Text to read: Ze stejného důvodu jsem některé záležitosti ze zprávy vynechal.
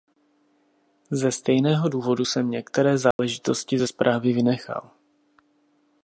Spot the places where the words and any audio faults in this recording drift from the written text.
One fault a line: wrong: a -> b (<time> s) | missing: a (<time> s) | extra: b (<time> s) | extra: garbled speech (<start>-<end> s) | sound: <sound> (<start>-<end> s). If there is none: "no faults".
sound: dropout (3.1-3.2 s)